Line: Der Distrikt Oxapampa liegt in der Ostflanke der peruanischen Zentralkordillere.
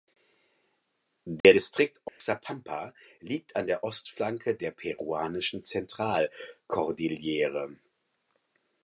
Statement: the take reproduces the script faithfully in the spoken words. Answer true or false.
false